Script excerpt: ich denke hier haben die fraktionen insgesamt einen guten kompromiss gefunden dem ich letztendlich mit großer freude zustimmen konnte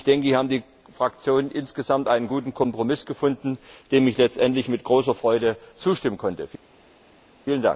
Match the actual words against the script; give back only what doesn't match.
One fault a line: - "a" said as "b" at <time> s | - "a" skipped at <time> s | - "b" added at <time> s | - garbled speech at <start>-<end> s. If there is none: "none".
none